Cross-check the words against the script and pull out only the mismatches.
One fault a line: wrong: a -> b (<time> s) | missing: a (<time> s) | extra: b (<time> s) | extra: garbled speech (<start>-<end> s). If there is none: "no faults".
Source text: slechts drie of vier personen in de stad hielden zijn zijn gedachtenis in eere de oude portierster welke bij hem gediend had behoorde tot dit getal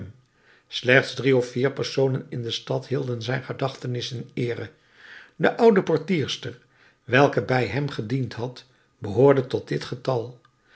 missing: zijn (3.4 s)